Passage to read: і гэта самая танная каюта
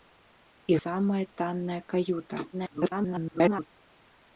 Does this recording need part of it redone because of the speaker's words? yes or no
yes